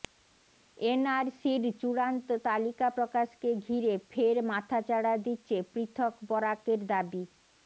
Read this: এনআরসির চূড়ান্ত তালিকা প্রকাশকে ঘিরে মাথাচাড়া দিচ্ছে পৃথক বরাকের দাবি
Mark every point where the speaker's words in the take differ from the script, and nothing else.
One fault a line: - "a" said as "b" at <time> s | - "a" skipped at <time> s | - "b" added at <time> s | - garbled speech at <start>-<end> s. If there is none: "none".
- "ফের" added at 4.1 s